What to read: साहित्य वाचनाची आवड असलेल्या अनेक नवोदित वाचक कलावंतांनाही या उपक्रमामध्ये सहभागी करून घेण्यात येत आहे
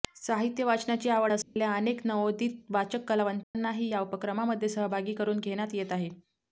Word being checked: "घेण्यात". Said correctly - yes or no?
yes